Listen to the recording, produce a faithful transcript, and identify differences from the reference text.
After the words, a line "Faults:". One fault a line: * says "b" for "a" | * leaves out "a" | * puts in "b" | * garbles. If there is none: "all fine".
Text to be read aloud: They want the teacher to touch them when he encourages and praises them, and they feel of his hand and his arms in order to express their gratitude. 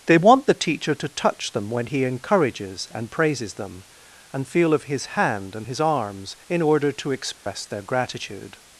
They want the teacher to touch them when he encourages and praises them, and feel of his hand and his arms in order to express their gratitude.
Faults:
* leaves out "they"